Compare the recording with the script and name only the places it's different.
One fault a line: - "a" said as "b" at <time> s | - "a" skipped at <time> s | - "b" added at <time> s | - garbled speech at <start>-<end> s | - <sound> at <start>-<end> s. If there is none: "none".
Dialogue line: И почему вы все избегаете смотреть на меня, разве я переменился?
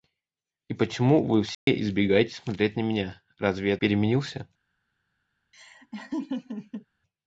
- dropout at 1.5-1.7 s
- laugh at 5.5-6.9 s